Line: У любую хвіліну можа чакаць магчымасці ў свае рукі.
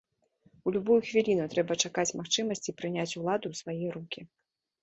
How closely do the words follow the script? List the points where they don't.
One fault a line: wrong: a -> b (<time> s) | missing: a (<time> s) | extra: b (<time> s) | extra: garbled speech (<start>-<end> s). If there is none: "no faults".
wrong: можа -> трэба (1.5 s)
extra: прыняць уладу (2.8 s)